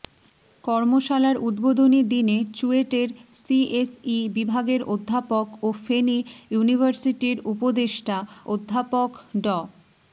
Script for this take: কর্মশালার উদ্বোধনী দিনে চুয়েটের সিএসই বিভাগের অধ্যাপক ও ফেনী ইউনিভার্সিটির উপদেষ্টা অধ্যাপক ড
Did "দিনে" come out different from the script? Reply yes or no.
no